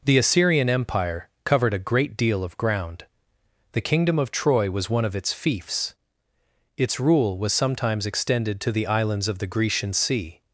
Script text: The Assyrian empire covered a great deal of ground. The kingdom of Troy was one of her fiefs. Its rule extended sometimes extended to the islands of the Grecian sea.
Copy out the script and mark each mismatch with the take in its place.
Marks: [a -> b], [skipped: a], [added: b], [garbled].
The Assyrian empire covered a great deal of ground. The kingdom of Troy was one of [her -> its] fiefs. Its rule [extended -> was] sometimes extended to the islands of the Grecian sea.